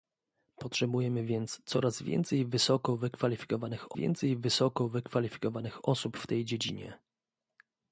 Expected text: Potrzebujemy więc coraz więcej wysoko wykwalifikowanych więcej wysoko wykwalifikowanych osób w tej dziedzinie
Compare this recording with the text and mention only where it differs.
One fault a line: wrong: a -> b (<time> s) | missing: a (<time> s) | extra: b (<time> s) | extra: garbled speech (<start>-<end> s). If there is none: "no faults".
no faults